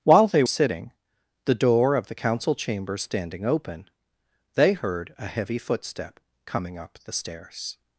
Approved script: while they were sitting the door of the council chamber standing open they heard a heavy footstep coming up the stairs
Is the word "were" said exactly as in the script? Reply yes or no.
no